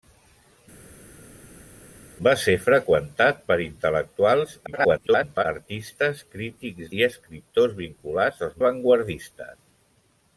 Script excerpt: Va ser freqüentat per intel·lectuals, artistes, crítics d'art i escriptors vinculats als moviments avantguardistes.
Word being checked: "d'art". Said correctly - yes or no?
no